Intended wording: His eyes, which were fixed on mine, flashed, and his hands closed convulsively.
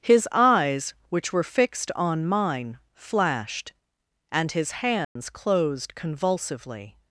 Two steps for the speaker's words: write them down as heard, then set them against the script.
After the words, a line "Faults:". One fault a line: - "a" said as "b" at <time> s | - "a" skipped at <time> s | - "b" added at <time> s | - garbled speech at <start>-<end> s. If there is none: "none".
His eyes, which were fixed on mine, flashed, and his hands closed convulsively.
Faults:
none